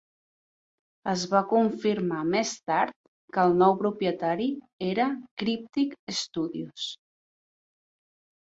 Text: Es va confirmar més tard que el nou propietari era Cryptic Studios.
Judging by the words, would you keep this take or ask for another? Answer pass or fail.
pass